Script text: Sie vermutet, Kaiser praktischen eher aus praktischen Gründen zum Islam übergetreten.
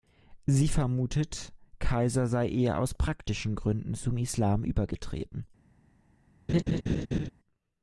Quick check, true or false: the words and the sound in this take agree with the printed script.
false